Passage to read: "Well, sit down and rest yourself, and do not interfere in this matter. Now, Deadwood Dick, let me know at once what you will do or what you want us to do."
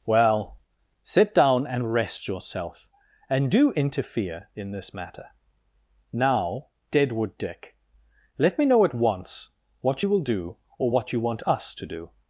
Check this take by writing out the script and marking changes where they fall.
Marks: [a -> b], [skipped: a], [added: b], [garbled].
"Well, sit down and rest yourself, and do [skipped: not] interfere in this matter. Now, Deadwood Dick, let me know at once what you will do or what you want us to do."